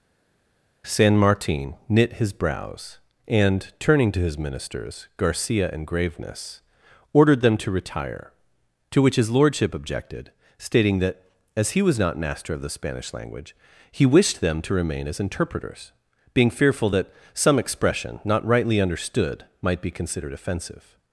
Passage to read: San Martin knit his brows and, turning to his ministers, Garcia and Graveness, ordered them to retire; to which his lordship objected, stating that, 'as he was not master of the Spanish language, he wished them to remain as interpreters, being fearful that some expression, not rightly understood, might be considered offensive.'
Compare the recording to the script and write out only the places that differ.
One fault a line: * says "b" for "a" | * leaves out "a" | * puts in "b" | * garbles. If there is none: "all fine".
all fine